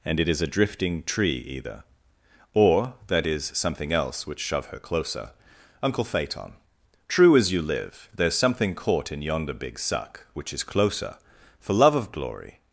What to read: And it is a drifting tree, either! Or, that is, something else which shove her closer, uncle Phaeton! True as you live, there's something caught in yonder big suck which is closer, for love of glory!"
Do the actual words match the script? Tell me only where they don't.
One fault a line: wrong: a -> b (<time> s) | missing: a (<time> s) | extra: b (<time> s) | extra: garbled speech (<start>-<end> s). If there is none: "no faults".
no faults